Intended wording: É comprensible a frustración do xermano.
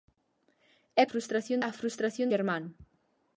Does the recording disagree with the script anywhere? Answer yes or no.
yes